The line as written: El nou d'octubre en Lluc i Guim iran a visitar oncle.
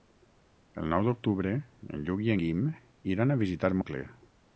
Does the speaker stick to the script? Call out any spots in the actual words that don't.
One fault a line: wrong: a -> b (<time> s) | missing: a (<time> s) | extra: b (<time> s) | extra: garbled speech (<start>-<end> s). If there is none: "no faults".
no faults